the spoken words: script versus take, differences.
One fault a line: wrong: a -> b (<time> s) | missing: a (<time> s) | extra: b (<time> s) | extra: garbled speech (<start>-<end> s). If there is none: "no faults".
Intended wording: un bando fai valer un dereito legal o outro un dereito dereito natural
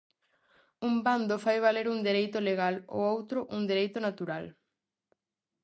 missing: dereito (4.0 s)